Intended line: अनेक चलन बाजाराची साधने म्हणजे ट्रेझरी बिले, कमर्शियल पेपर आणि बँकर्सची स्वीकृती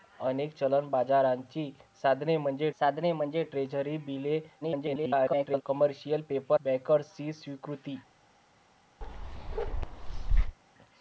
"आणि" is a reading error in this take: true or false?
true